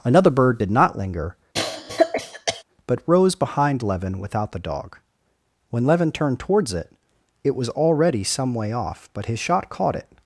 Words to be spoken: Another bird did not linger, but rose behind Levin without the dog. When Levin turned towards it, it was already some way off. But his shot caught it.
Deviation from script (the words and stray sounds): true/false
true